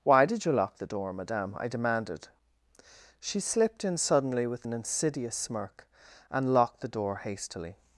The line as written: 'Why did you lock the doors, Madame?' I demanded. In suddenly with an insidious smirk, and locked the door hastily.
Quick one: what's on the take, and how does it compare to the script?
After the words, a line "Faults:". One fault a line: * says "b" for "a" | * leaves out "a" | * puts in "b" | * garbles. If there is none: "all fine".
'Why did you lock the door, Madame?' I demanded. She slipped in suddenly with an insidious smirk, and locked the door hastily.
Faults:
* says "door" for "doors"
* puts in "She slipped"